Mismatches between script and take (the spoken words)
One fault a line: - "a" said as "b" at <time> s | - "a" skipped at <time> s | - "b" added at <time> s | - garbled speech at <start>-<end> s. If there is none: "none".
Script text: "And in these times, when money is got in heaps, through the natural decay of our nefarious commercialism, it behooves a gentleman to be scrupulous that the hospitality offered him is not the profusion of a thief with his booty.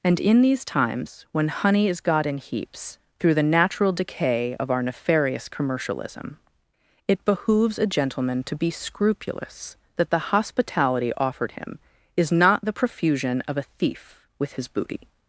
- "money" said as "honey" at 1.5 s